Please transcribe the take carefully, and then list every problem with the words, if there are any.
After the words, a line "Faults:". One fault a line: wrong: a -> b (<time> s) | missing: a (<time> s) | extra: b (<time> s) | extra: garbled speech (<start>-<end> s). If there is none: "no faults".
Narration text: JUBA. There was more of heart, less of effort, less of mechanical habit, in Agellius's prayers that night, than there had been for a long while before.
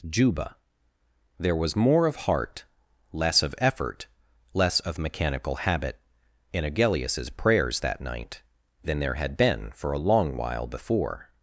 JUBA. There was more of heart, less of effort, less of mechanical habit, in Agellius's prayers that night, than there had been for a long while before.
Faults:
no faults